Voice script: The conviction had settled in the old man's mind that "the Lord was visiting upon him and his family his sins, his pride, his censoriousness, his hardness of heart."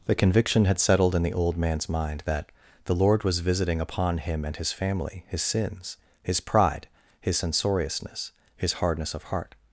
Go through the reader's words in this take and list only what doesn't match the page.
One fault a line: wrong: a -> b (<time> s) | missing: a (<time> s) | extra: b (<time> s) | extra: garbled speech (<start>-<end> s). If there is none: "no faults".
no faults